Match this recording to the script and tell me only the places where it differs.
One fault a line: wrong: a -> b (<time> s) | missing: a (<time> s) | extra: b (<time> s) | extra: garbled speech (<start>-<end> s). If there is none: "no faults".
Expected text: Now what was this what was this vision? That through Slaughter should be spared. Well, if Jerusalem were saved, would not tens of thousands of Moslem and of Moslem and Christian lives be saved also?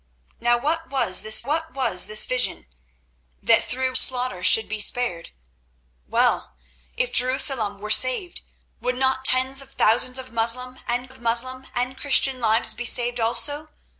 no faults